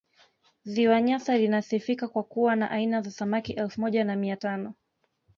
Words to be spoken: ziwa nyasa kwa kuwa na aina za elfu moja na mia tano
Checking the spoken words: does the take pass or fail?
fail